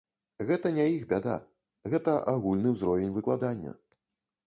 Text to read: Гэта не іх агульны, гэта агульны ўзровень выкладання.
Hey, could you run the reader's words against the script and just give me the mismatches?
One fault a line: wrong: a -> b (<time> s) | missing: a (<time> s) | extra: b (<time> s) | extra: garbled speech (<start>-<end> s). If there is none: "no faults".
wrong: агульны -> бяда (1.1 s)